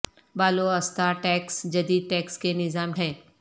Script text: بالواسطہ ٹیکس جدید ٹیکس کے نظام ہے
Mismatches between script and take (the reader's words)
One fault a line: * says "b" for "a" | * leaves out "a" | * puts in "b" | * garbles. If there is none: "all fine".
all fine